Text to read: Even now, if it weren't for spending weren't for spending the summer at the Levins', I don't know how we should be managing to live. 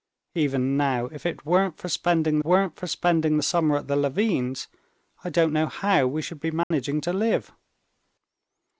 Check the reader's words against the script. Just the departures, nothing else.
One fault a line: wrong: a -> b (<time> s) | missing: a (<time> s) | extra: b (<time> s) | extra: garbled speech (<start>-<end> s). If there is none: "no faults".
no faults